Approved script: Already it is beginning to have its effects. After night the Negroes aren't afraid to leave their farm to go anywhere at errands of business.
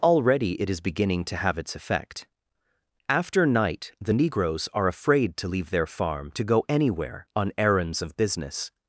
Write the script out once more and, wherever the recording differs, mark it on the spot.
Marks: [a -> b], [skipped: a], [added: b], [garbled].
Already it is beginning to have its [effects. -> effect] After night the Negroes [aren't -> are] afraid to leave their farm to go anywhere [at -> on] errands of business.